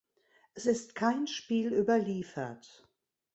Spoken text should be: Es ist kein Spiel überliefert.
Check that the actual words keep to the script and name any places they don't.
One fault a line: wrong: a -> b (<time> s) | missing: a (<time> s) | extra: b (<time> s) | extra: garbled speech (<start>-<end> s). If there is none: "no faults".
no faults